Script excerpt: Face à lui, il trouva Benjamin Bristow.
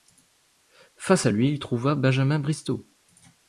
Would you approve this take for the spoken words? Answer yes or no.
yes